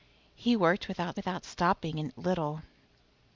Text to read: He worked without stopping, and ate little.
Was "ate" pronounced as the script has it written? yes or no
no